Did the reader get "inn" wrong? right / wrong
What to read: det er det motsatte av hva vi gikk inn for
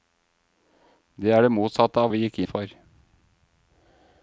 wrong